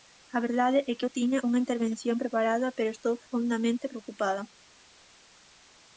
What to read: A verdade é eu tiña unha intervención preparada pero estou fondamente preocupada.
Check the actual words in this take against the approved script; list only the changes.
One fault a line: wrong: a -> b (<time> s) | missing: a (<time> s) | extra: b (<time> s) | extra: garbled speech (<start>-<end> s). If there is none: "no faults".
extra: que (1.0 s)